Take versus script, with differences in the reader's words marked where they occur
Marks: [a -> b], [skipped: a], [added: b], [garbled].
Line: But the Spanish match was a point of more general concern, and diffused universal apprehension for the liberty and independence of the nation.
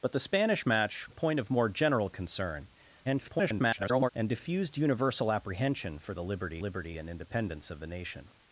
But the Spanish match [skipped: was] a point of more general concern, [garbled] and diffused universal apprehension for the liberty [added: liberty] and independence of the nation.